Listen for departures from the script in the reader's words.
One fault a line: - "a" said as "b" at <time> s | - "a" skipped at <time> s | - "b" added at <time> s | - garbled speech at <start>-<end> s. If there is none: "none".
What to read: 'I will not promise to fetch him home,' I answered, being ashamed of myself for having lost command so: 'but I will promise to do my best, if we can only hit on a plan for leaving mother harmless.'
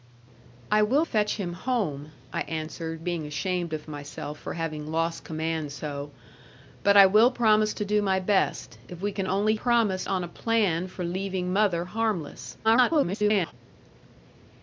- "not promise to" skipped at 1.1 s
- "hit" said as "promise" at 9.5 s
- garbled speech at 12.6-13.5 s